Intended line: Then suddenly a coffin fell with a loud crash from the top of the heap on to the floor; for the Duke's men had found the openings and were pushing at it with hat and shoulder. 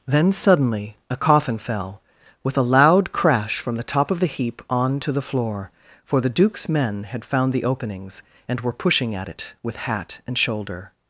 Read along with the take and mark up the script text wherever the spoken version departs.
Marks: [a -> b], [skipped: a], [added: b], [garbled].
Then suddenly a coffin fell with a loud crash from the top of the heap on to the floor; for the Duke's men had found the openings and were pushing at it with hat and shoulder.